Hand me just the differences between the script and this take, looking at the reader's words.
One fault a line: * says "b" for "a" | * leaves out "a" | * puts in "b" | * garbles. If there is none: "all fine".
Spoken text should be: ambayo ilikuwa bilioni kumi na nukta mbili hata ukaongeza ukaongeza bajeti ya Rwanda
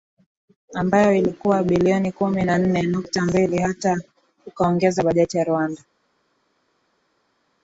* puts in "nne"
* leaves out "ukaongeza"